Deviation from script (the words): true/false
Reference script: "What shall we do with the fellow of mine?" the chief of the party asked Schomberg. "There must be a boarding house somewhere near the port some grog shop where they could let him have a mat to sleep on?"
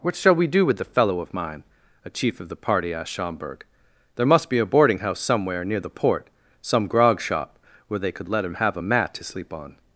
true